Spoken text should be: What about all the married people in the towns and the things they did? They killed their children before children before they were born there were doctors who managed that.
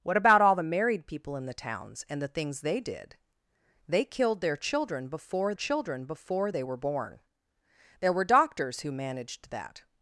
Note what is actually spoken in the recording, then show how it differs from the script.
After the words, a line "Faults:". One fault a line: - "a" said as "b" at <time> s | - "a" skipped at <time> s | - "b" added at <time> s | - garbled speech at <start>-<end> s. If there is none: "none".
What about all the married people in the towns and the things they did? They killed their children before children before they were born there were doctors who managed that.
Faults:
none